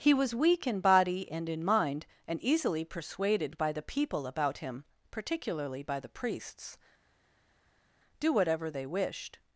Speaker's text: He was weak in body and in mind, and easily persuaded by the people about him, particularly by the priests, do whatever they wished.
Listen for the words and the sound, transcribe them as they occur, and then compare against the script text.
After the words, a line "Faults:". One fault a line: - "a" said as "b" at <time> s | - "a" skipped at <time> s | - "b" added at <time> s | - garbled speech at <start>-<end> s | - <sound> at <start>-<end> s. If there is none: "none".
He was weak in body and in mind, and easily persuaded by the people about him, particularly by the priests, do whatever they wished.
Faults:
none